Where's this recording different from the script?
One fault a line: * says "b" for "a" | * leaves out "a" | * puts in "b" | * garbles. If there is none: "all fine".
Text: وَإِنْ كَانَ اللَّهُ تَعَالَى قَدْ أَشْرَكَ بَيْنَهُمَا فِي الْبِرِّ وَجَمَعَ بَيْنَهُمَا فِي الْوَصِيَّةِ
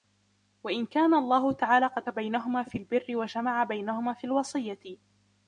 * leaves out "أَشْرَكَ"